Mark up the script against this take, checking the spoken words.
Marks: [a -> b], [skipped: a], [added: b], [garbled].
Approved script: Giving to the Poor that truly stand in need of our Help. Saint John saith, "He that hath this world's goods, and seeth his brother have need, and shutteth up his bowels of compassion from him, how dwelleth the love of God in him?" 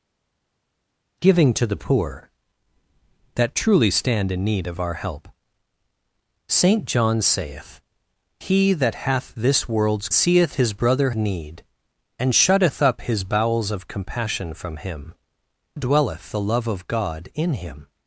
Giving to the Poor that truly stand in need of our Help. Saint John saith, "He that hath this world's [skipped: goods, and] seeth his brother [skipped: have] need, and shutteth up his bowels of compassion from him, [skipped: how] dwelleth the love of God in him?"